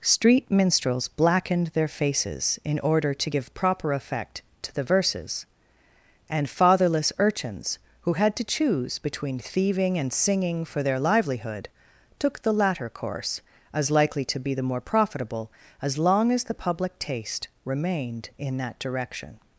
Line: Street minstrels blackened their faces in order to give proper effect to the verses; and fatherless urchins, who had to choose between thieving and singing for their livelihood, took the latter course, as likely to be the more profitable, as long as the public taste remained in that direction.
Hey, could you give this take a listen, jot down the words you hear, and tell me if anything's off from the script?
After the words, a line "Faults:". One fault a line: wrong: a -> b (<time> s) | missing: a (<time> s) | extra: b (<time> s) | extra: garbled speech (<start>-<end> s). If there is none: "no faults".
Street minstrels blackened their faces in order to give proper effect to the verses; and fatherless urchins, who had to choose between thieving and singing for their livelihood, took the latter course, as likely to be the more profitable, as long as the public taste remained in that direction.
Faults:
no faults